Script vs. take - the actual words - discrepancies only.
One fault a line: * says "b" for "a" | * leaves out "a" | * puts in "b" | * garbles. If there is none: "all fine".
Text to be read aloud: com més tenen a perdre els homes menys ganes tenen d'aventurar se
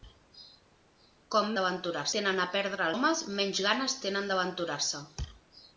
* says "d'aventurar" for "més"
* leaves out "els"